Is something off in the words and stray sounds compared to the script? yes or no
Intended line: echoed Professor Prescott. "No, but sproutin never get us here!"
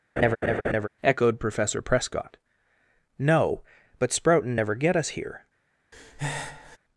yes